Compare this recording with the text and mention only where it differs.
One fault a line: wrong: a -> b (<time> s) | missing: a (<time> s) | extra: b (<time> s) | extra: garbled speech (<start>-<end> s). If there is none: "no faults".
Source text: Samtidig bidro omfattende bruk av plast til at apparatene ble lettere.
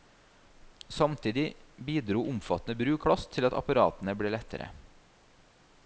missing: av (3.0 s)